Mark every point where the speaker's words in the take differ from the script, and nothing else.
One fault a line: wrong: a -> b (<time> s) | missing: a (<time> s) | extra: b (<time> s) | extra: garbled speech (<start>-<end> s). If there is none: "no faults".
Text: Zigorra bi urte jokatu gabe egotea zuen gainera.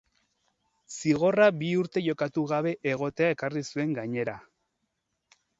extra: ekarri (3.4 s)